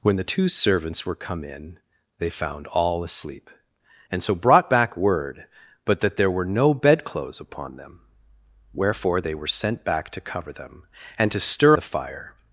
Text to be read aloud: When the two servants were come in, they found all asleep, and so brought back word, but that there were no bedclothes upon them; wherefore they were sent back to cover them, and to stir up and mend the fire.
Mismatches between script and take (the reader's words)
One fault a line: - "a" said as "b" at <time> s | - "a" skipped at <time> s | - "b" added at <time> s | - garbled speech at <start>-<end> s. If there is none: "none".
- "up and mend" skipped at 11.8 s